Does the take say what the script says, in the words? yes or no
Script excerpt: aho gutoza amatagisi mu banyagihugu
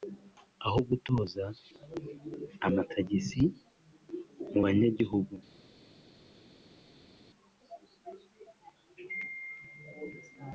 yes